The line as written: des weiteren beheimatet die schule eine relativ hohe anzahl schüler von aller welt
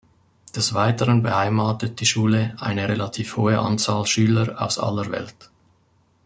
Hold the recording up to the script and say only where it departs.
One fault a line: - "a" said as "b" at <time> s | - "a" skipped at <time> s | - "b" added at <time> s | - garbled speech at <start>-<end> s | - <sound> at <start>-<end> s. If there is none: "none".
- "von" said as "aus" at 4.6 s